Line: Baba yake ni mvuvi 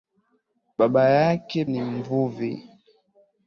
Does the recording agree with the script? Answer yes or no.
yes